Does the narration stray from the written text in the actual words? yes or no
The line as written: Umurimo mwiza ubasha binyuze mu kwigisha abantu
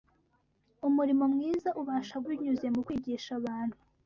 no